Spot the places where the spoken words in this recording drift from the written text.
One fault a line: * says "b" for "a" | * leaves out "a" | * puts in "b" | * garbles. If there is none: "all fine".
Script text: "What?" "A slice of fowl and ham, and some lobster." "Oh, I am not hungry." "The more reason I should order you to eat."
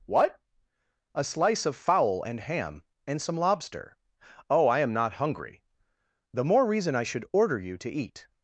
all fine